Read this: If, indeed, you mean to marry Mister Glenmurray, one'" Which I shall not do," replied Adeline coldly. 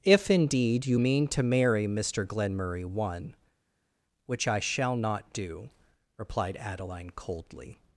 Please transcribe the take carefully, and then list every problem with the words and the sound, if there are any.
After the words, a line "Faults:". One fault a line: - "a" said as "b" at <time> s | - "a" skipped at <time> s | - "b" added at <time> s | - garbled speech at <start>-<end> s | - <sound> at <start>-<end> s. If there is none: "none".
If, indeed, you mean to marry Mister Glenmurray, one'" Which I shall not do," replied Adeline coldly.
Faults:
none